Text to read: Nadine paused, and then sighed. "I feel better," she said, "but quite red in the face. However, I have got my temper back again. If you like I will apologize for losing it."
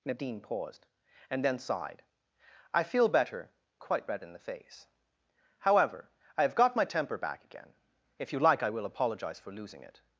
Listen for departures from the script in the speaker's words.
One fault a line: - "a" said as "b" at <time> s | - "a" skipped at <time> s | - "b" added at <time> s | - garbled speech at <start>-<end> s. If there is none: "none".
- "she said but" skipped at 3.5 s